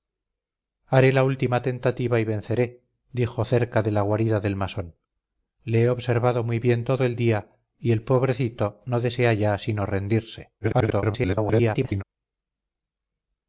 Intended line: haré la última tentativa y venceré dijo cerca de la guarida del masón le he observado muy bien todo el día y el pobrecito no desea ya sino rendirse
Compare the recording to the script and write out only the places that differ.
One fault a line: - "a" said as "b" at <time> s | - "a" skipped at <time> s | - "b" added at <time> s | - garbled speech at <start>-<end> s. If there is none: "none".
- garbled speech at 10.6-12.0 s